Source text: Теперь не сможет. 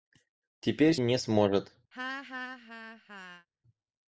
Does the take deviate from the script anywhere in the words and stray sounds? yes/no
yes